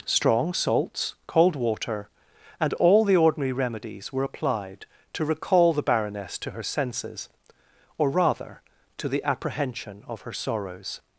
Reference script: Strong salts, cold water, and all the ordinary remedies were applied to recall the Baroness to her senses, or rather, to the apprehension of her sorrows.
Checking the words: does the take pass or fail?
pass